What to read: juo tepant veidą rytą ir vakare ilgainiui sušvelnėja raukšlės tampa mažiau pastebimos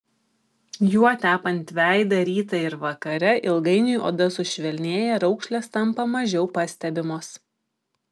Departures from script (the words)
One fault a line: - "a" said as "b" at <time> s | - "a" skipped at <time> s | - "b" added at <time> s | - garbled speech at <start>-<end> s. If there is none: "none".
- "oda" added at 4.1 s